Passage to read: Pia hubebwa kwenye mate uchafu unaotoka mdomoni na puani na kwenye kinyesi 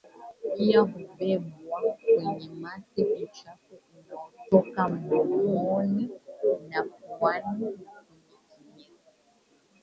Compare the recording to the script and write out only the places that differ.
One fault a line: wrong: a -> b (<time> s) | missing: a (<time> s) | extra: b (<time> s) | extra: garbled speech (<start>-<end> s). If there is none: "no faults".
no faults